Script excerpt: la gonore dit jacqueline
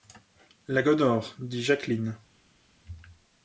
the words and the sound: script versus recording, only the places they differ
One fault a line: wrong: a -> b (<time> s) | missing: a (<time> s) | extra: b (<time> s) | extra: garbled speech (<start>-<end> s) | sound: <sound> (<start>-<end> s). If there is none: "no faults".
no faults